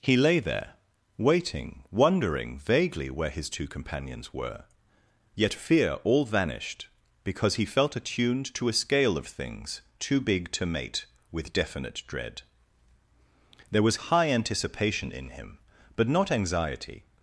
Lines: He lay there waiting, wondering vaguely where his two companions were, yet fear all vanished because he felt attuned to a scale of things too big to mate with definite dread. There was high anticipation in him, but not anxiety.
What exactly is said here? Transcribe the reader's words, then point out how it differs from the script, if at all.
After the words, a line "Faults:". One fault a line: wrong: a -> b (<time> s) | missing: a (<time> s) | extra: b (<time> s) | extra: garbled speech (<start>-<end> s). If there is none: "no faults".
He lay there waiting, wondering vaguely where his two companions were, yet fear all vanished because he felt attuned to a scale of things too big to mate with definite dread. There was high anticipation in him, but not anxiety.
Faults:
no faults